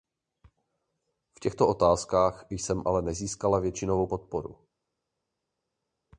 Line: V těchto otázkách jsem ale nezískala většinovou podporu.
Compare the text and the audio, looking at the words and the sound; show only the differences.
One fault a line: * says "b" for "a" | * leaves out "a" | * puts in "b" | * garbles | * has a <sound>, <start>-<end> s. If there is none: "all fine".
all fine